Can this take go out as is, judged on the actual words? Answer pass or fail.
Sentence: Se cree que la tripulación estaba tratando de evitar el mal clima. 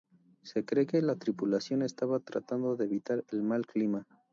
pass